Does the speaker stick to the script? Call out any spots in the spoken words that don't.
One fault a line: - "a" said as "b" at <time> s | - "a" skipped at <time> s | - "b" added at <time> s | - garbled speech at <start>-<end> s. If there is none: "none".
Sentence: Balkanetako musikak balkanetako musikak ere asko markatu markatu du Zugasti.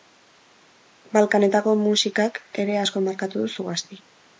- "balkanetako musikak" skipped at 2.4 s
- "markatu" skipped at 3.5 s